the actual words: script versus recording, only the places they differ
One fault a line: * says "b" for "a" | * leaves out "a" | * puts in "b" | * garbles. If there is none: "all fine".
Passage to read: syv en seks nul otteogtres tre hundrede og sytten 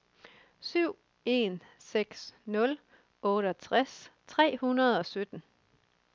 all fine